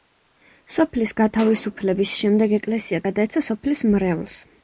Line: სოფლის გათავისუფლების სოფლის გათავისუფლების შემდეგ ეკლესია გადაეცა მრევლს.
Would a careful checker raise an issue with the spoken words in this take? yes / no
yes